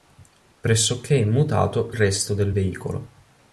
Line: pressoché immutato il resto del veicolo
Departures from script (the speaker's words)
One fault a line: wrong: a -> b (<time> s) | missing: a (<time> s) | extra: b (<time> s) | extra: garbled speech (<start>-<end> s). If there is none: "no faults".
missing: il (1.9 s)